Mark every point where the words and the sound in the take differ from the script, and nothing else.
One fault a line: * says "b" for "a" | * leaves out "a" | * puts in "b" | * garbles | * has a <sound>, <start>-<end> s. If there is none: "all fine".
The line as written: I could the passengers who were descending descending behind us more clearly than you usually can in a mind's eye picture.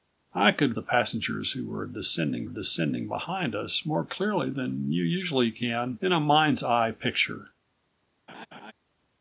* has a laugh, 8.3-8.7 s